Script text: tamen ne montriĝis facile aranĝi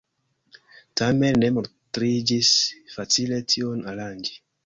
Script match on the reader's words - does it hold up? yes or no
no